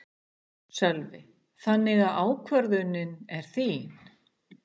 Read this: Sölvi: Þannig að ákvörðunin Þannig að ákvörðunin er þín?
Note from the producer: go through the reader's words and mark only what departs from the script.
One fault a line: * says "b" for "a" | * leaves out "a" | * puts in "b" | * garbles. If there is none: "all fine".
* leaves out "Þannig að ákvörðunin"